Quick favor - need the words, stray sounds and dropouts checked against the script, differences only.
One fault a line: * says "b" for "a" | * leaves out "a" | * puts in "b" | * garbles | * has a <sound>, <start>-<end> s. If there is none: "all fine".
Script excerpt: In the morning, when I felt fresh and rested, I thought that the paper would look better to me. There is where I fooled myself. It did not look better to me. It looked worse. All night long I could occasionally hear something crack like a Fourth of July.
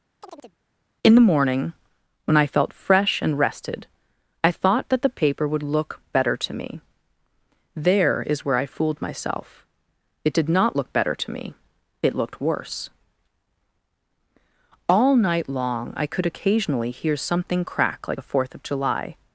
* has a chirp, 0.2-0.6 s